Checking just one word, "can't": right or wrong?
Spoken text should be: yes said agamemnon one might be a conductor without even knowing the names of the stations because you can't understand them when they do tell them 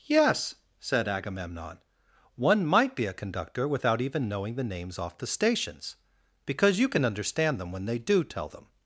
wrong